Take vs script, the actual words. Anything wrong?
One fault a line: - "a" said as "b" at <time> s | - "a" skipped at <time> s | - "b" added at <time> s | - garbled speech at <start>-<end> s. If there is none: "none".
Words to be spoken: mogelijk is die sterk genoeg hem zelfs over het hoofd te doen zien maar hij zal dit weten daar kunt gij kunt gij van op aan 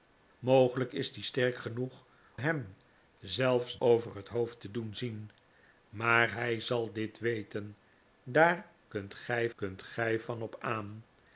none